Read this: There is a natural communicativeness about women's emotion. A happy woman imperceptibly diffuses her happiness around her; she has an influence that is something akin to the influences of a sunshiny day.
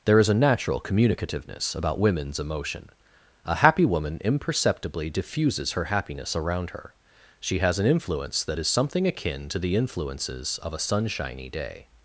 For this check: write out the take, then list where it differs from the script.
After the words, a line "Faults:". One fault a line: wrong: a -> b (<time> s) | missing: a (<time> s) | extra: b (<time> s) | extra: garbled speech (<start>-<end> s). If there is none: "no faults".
There is a natural communicativeness about women's emotion. A happy woman imperceptibly diffuses her happiness around her; she has an influence that is something akin to the influences of a sunshiny day.
Faults:
no faults